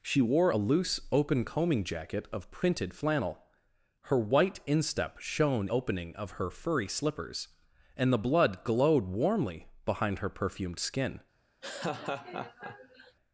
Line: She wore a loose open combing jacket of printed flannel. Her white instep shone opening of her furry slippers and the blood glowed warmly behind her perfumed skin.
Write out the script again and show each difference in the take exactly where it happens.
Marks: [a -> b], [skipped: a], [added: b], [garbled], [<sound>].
She wore a loose open combing jacket of printed flannel. Her white instep shone opening of her furry slippers and the blood glowed warmly behind her perfumed skin. [laugh]